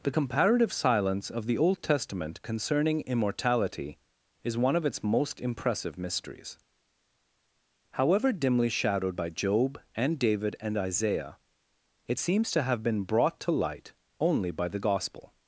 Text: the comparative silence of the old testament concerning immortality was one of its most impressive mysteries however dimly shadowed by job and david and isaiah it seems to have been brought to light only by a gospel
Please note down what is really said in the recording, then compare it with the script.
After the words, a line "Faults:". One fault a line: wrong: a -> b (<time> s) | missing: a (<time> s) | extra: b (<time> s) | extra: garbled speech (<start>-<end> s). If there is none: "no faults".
the comparative silence of the old testament concerning immortality is one of its most impressive mysteries however dimly shadowed by job and david and isaiah it seems to have been brought to light only by the gospel
Faults:
wrong: was -> is (4.4 s)
wrong: a -> the (14.7 s)